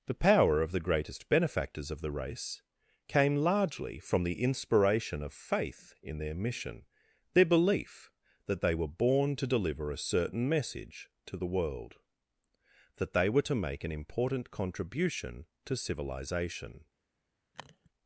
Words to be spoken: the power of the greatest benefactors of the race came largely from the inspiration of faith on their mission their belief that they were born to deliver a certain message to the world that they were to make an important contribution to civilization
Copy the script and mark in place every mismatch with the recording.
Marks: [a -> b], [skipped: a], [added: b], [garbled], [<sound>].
the power of the greatest benefactors of the race came largely from the inspiration of faith [on -> in] their mission their belief that they were born to deliver a certain message to the world that they were to make an important contribution to civilization [sniff]